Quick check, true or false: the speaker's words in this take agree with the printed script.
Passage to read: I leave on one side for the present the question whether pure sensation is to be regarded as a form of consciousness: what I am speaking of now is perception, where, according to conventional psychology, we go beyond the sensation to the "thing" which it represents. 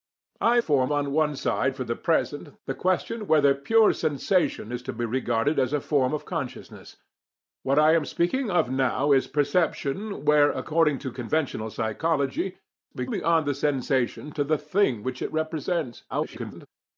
false